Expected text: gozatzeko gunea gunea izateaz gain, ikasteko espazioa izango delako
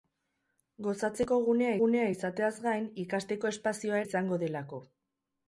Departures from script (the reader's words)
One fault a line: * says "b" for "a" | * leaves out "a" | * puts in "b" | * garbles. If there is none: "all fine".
all fine